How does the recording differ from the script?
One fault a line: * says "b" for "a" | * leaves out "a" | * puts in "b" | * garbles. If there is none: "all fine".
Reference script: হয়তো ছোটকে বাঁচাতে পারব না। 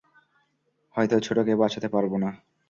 all fine